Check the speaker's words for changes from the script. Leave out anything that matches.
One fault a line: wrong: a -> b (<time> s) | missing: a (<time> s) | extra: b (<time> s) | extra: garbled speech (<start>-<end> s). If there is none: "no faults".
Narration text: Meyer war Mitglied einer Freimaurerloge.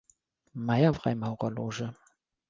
missing: war Mitglied einer (0.9 s)